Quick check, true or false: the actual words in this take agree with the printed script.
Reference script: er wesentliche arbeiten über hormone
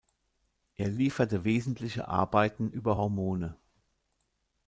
false